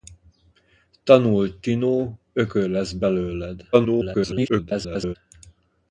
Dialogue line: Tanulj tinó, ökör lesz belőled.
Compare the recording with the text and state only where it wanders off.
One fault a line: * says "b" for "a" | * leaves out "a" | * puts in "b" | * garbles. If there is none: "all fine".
* garbles